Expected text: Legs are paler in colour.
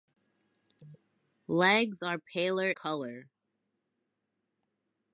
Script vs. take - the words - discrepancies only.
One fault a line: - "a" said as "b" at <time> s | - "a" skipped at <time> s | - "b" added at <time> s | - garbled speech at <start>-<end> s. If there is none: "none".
- "in" skipped at 2.7 s